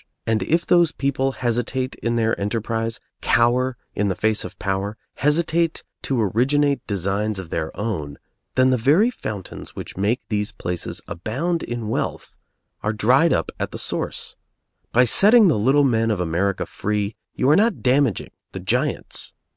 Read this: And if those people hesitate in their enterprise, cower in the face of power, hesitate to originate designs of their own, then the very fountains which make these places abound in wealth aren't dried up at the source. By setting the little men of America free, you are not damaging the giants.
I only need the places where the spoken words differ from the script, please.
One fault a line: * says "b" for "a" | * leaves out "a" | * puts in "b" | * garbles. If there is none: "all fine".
* says "are" for "aren't"